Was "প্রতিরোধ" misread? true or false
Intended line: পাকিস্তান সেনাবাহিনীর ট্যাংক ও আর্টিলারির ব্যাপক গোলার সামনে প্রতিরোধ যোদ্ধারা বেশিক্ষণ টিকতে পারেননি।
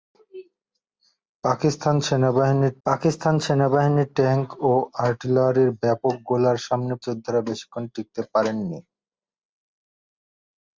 true